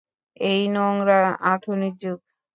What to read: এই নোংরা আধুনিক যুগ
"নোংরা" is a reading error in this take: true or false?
false